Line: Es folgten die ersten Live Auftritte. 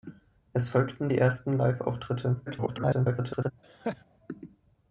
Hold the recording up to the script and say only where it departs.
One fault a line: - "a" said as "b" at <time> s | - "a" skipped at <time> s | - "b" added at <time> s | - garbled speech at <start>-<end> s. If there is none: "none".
- garbled speech at 2.5-3.5 s